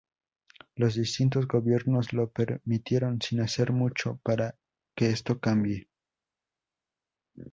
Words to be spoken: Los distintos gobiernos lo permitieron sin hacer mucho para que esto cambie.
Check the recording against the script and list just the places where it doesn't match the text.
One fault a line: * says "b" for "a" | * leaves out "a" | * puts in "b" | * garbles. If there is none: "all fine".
all fine